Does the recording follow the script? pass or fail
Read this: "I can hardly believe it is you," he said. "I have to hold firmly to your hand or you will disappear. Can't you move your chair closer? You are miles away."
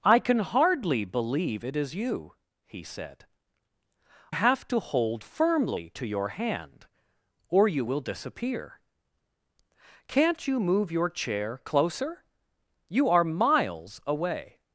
fail